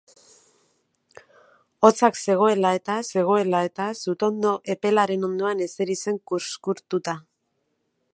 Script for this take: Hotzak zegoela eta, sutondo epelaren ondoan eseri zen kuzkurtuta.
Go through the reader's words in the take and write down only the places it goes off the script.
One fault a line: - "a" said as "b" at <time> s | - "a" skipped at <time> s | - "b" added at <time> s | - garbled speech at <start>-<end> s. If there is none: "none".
- "zegoela eta" added at 3.1 s